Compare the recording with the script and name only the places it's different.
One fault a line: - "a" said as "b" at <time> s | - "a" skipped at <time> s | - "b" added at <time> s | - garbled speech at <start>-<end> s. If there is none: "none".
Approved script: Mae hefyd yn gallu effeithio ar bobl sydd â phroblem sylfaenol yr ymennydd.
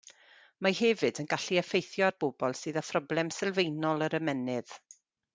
none